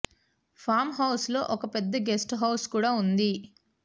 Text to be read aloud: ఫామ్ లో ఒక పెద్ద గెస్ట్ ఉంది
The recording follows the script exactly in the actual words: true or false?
false